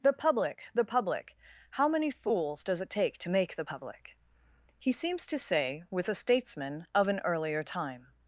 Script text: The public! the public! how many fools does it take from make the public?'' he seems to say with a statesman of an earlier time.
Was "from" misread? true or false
true